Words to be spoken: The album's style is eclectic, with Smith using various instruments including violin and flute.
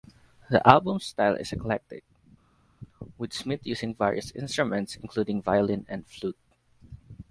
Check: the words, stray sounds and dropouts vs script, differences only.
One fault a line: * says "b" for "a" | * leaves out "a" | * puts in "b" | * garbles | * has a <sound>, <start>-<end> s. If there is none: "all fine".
all fine